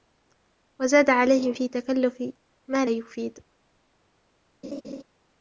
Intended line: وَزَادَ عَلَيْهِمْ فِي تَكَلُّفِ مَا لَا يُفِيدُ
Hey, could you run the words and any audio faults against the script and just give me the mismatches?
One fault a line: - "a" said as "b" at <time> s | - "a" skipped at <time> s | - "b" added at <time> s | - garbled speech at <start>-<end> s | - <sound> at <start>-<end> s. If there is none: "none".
- "لَا" skipped at 2.8 s
- laugh at 4.6-5.0 s